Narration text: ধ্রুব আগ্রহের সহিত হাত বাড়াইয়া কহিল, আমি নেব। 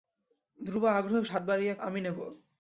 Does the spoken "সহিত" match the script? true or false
false